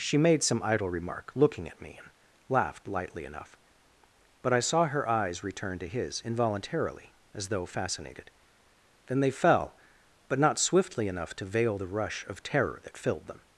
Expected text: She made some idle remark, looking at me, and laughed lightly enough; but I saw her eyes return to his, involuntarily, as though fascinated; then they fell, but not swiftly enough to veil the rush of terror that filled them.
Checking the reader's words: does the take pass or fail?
pass